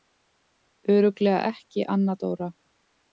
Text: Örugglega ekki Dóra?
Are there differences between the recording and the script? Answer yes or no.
yes